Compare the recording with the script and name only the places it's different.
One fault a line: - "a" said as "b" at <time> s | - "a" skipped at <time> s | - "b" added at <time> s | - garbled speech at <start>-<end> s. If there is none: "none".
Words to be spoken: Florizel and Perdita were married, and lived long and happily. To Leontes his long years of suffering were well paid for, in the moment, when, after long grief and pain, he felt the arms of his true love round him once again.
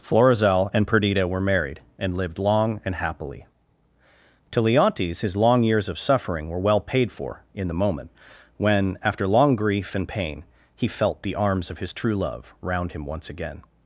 none